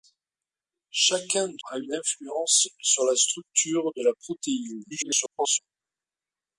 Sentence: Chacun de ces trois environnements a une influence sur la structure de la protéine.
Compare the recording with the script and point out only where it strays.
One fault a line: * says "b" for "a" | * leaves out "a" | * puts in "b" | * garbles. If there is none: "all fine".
* leaves out "ces trois environnements"
* garbles